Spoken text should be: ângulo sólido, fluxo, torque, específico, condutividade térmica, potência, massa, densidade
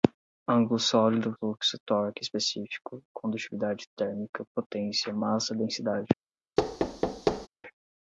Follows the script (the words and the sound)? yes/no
no